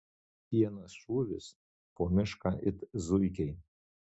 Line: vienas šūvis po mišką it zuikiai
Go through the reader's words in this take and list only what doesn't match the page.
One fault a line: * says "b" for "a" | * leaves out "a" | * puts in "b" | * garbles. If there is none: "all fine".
all fine